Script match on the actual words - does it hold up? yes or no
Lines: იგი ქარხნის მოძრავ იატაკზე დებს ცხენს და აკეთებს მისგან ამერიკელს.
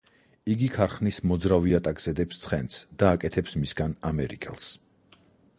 yes